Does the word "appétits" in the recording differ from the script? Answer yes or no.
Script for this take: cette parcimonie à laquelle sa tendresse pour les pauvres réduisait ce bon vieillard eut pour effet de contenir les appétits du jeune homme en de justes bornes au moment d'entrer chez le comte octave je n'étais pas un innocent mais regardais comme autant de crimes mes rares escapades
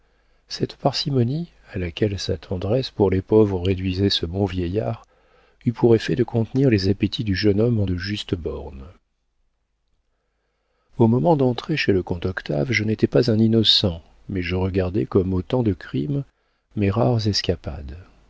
no